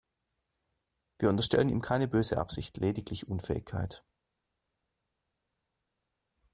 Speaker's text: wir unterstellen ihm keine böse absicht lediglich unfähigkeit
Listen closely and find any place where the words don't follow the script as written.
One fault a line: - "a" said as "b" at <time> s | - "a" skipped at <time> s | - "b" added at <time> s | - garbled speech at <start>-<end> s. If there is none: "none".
none